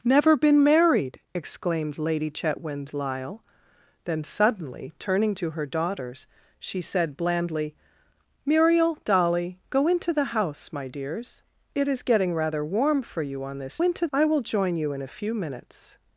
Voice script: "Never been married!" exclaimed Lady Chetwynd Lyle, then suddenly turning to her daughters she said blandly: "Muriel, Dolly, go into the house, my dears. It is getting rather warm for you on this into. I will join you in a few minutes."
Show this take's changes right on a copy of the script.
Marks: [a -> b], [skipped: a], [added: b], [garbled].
"Never been married!" exclaimed Lady Chetwynd Lyle, then suddenly turning to her daughters she said blandly: "Muriel, Dolly, go into the house, my dears. It is getting rather warm for you on this into. I will join you in a few minutes."